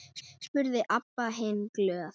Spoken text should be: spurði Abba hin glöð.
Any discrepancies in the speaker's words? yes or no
no